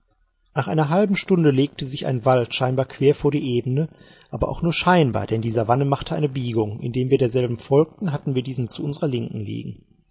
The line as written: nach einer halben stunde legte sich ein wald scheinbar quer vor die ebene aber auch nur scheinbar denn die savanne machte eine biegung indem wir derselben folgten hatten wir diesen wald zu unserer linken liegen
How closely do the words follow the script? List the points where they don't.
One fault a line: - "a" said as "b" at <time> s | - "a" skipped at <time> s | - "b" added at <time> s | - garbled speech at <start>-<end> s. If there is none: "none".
- "wald" skipped at 8.7 s